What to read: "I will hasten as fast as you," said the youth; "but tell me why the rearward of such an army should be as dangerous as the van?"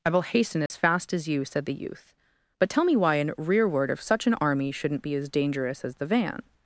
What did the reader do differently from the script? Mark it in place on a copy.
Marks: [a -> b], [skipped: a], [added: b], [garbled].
"I will hasten as fast as you," said the youth; "but tell me why [the -> an] rearward of such an army [should -> shouldn't] be as dangerous as the van?"